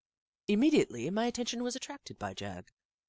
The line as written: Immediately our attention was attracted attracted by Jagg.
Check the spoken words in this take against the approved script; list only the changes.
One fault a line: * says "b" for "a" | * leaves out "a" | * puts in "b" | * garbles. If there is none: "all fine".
* says "my" for "our"
* leaves out "attracted"